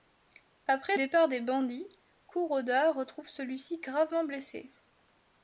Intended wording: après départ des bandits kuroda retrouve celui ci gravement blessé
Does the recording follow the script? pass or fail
pass